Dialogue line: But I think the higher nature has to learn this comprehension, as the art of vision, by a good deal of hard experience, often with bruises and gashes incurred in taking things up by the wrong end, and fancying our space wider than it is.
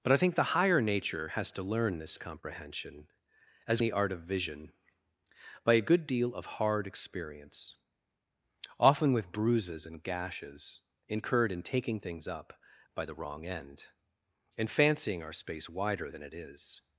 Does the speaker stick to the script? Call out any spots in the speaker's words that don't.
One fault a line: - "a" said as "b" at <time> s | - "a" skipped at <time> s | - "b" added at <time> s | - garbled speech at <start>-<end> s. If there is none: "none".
none